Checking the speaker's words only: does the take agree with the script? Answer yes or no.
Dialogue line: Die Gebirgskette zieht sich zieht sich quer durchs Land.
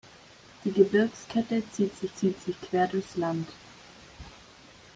yes